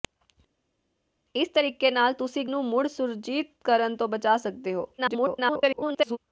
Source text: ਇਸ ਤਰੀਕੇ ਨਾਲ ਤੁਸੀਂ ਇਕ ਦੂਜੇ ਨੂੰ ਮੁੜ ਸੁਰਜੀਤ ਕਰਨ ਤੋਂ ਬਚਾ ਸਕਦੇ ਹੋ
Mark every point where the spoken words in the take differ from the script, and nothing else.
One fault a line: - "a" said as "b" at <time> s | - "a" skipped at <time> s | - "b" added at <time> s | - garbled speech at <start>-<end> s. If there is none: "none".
- "ਦੂਜੇ" skipped at 2.5 s
- garbled speech at 5.0-6.2 s